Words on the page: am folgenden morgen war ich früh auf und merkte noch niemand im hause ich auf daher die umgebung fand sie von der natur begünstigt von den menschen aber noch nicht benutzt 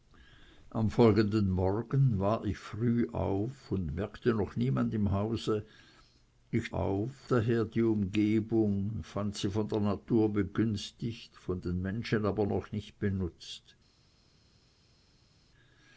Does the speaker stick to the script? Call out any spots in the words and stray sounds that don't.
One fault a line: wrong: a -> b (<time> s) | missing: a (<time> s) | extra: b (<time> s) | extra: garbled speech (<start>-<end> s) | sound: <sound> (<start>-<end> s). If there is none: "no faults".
no faults